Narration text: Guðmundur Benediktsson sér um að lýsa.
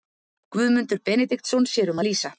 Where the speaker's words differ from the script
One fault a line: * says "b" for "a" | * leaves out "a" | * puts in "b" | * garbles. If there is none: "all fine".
all fine